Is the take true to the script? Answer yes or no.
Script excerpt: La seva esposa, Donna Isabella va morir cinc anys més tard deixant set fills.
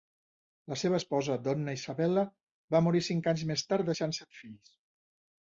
yes